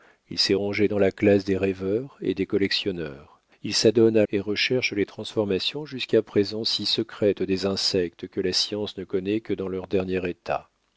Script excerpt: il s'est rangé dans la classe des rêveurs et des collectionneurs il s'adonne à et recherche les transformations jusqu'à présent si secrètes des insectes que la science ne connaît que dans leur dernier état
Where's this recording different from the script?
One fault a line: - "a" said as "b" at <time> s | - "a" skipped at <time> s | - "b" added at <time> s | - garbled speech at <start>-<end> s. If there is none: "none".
none